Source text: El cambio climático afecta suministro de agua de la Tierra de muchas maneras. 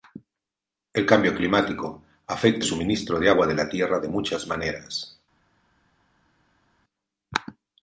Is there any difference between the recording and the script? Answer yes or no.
no